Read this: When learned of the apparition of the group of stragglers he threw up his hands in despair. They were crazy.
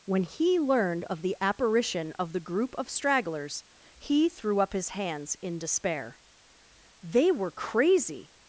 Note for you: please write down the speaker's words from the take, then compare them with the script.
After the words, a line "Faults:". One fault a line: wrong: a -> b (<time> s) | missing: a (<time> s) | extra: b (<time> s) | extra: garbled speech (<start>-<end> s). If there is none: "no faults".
When he learned of the apparition of the group of stragglers he threw up his hands in despair. They were crazy.
Faults:
extra: he (0.2 s)